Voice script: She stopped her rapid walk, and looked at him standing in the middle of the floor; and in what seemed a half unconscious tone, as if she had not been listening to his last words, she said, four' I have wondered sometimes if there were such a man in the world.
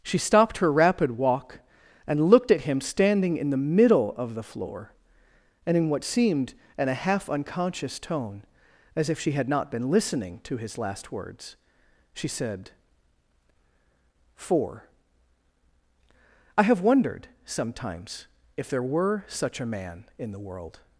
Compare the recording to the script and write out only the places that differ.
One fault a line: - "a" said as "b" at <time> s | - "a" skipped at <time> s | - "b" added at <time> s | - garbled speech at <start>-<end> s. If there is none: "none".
- "in" added at 6.8 s